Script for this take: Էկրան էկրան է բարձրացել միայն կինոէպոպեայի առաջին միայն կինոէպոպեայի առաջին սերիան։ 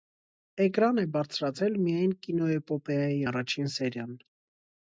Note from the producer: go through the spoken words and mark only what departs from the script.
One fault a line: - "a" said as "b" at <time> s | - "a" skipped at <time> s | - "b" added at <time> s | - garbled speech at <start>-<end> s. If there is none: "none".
- "էկրան" skipped at 1.0 s
- "միայն կինոէպոպեայի առաջին" skipped at 3.7 s